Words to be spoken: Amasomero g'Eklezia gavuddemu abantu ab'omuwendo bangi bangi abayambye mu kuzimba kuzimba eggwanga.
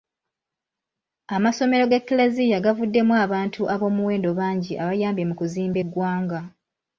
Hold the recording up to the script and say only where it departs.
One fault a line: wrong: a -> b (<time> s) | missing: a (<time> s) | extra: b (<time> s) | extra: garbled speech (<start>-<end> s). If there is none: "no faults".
missing: bangi (4.7 s)
missing: kuzimba (5.8 s)